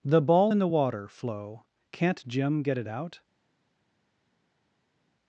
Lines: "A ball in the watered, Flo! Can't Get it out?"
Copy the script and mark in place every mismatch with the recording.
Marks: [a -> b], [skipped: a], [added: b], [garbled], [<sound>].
["A -> The] ball in the [watered, -> water] Flo! Can't [added: Jim] Get it out?"